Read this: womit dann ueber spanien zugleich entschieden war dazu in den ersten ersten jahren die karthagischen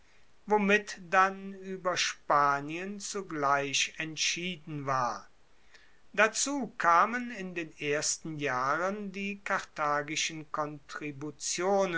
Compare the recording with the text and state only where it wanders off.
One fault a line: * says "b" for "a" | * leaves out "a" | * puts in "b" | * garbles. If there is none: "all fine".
* puts in "kamen"
* leaves out "ersten"